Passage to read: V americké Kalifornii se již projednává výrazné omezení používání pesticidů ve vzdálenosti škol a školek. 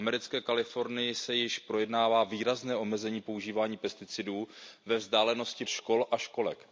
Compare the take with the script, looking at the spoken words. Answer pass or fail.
pass